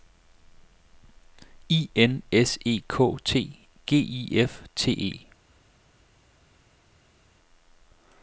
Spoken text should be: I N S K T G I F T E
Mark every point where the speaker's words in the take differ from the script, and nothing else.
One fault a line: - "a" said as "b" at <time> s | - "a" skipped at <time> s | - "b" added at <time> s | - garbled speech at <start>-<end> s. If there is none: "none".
- "E" added at 2.6 s